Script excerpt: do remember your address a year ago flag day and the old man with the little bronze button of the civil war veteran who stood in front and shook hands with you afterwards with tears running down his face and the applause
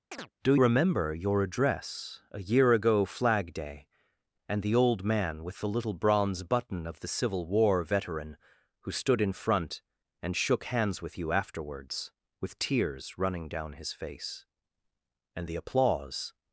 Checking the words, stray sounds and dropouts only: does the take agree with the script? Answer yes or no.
no